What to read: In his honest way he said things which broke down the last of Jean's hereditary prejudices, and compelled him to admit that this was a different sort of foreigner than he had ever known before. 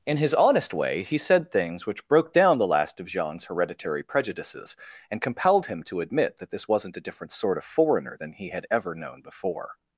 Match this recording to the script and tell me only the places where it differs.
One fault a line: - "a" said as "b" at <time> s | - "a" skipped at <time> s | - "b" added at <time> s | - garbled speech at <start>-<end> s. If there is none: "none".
- "was" said as "wasn't" at 6.7 s